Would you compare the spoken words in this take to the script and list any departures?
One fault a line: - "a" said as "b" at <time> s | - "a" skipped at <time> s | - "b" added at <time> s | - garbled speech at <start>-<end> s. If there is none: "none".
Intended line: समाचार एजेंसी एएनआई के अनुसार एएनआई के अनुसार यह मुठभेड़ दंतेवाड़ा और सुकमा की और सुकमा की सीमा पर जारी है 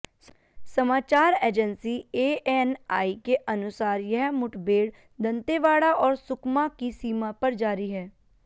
- "एएनआई के अनुसार" skipped at 4.0 s
- "और सुकमा की" skipped at 6.9 s